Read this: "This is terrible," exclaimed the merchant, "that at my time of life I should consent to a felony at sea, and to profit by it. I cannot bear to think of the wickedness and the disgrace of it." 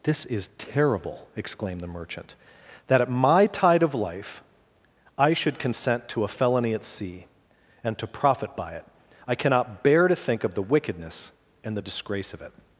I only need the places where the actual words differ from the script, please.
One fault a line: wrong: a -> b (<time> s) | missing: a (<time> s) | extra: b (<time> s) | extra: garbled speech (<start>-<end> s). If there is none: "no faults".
wrong: time -> tide (3.5 s)